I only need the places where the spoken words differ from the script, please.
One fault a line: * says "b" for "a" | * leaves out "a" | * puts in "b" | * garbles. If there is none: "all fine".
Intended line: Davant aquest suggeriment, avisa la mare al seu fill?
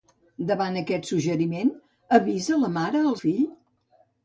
* leaves out "seu"